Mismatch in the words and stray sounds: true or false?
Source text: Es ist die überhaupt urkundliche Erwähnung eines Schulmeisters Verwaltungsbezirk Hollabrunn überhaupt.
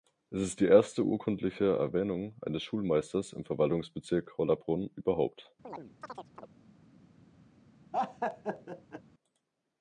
true